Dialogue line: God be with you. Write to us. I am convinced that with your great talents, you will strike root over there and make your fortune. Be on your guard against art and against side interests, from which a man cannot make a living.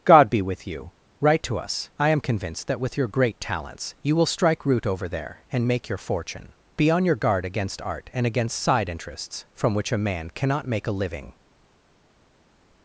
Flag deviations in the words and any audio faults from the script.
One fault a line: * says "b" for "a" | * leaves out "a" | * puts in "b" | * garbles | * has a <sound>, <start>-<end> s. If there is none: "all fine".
all fine